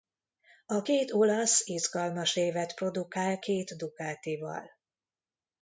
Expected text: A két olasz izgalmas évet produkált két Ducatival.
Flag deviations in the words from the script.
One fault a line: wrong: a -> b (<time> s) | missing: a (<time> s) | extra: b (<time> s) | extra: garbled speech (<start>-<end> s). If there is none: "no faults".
no faults